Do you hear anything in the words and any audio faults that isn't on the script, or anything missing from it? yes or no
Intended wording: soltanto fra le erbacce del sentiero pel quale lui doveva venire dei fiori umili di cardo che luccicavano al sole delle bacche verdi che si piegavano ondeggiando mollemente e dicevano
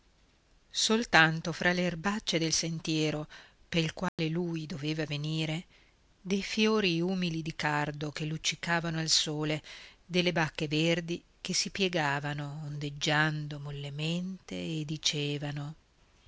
yes